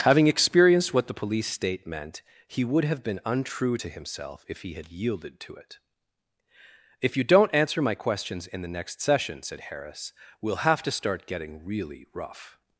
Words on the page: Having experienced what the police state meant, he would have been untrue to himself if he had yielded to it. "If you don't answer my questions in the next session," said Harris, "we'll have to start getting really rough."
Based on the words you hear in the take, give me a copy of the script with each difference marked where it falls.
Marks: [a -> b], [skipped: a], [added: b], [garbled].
Having experienced what the police state meant, he would have been untrue to himself if he had yielded to it. "If you don't answer my questions in the next session," said Harris, "we'll have to start getting really rough."